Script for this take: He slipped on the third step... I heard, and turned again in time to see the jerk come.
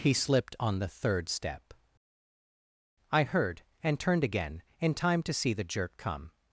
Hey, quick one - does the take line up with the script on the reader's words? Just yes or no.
yes